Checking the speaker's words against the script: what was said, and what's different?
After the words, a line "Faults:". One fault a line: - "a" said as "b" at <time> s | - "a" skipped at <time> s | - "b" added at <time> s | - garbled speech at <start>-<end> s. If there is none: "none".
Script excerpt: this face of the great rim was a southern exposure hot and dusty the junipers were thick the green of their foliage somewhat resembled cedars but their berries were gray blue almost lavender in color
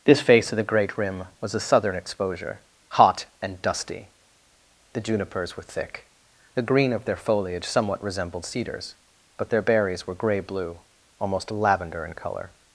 this face of the great rim was a southern exposure hot and dusty the junipers were thick the green of their foliage somewhat resembled cedars but their berries were gray blue almost lavender in color
Faults:
none